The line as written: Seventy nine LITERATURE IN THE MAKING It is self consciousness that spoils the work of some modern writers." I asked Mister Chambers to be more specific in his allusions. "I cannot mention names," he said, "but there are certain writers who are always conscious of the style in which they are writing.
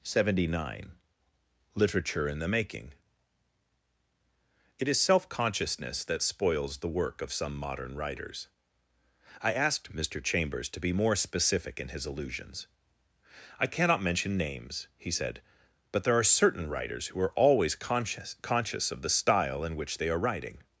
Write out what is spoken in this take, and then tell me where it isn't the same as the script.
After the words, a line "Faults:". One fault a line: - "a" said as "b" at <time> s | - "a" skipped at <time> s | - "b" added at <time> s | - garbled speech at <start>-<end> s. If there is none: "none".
Seventy nine LITERATURE IN THE MAKING It is self consciousness that spoils the work of some modern writers." I asked Mister Chambers to be more specific in his allusions. "I cannot mention names," he said, "but there are certain writers who are always conscious conscious of the style in which they are writing.
Faults:
- "conscious" added at 18.4 s